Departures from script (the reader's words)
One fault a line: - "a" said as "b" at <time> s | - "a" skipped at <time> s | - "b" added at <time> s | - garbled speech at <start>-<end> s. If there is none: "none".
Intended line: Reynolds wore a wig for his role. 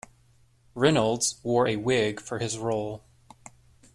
none